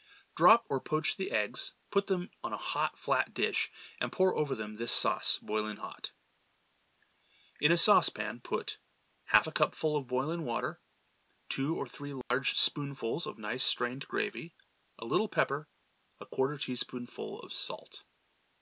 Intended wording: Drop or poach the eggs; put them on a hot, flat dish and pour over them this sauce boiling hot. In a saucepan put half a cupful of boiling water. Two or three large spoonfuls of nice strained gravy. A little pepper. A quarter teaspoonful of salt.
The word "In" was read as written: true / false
true